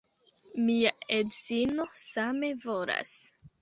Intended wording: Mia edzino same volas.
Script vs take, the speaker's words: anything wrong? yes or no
no